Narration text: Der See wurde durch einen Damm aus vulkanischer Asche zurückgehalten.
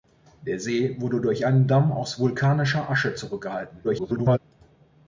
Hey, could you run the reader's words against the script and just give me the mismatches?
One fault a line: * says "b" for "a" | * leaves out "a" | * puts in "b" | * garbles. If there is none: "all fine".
* garbles